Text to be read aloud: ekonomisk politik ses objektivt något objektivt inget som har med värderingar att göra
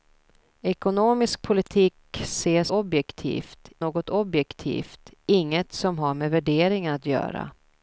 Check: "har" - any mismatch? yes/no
no